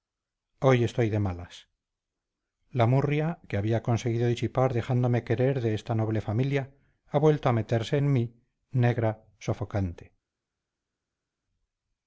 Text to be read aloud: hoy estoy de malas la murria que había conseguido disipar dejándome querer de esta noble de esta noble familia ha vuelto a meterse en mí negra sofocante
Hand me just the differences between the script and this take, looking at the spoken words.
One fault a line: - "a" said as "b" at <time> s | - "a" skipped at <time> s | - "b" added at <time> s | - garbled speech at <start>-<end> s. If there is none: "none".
- "de esta noble" skipped at 6.2 s